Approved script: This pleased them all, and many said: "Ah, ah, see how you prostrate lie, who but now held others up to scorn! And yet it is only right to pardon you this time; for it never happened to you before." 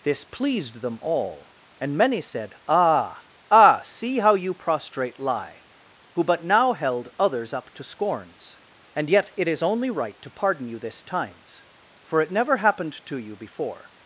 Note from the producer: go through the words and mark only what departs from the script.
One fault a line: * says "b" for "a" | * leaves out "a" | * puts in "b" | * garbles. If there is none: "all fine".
* says "scorns" for "scorn"
* says "times" for "time"